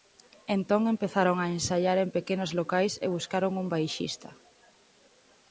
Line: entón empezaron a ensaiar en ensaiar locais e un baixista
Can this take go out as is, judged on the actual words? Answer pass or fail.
fail